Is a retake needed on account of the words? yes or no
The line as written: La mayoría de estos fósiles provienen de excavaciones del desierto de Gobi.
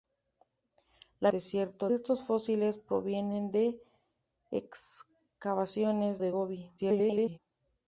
yes